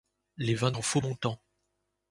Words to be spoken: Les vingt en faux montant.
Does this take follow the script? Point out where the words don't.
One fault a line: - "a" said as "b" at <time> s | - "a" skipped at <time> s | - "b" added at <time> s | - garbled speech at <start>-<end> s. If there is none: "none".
none